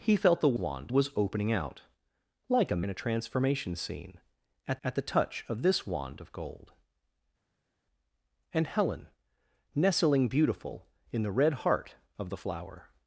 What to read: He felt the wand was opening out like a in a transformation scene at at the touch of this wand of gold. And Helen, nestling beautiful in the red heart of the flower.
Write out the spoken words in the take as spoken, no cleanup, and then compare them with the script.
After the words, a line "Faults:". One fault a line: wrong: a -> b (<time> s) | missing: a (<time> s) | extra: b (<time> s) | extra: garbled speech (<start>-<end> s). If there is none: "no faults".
He felt the wand was opening out like a in a transformation scene at at the touch of this wand of gold. And Helen, nestling beautiful in the red heart of the flower.
Faults:
no faults